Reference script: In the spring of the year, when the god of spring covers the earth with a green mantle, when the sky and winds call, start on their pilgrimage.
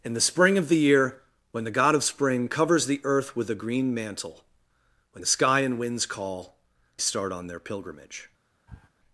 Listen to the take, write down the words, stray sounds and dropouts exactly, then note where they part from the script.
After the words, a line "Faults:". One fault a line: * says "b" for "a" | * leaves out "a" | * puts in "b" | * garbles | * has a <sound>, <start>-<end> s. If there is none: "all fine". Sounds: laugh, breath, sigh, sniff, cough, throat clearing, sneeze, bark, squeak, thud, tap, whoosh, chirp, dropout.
In the spring of the year, when the god of spring covers the earth with a green mantle, when the sky and winds call, start on their pilgrimage.
Faults:
* has a sniff, 8.7-8.9 s